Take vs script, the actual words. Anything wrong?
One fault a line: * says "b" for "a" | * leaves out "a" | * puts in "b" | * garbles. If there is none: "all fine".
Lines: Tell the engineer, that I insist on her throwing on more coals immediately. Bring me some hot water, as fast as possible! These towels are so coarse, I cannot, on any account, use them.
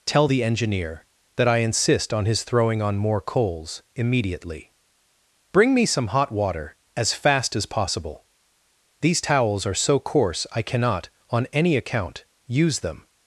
* says "his" for "her"